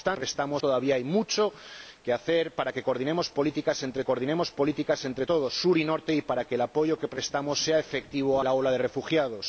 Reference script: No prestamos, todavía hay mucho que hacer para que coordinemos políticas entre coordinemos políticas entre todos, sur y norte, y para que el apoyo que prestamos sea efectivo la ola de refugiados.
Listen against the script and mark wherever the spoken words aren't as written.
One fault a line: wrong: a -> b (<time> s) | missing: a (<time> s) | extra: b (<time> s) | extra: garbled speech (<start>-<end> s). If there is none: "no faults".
no faults